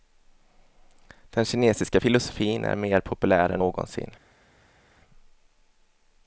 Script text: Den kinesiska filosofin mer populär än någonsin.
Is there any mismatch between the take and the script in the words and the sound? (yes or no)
yes